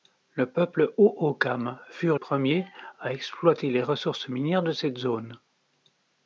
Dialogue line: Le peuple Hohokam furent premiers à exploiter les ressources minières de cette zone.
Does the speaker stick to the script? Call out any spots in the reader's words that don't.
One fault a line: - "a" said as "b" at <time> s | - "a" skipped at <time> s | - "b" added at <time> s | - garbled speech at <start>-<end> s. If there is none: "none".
none